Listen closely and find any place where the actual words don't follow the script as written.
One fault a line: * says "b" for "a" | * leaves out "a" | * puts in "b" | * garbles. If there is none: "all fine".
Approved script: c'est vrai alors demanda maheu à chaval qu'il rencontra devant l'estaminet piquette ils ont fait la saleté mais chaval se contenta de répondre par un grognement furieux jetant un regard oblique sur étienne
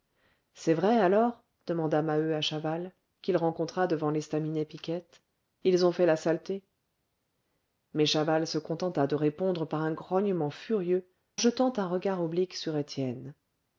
all fine